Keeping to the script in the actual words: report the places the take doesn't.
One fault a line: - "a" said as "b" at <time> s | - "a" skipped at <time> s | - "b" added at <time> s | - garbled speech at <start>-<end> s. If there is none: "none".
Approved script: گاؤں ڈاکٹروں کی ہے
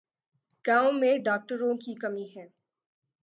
- "میں" added at 0.9 s
- "کمی" added at 1.9 s